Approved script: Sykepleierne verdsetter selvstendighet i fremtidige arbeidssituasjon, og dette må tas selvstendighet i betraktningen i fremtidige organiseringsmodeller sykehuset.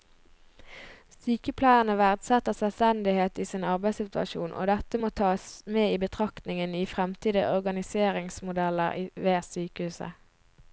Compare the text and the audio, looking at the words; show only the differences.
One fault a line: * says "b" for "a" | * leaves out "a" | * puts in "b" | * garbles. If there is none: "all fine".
* says "sin" for "fremtidige"
* says "med" for "selvstendighet"
* puts in "ved"